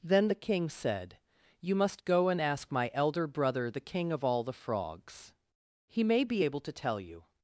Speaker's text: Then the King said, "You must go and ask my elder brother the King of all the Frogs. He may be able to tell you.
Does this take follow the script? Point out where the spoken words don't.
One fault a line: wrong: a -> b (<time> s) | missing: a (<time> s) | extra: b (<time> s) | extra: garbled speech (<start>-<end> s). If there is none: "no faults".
no faults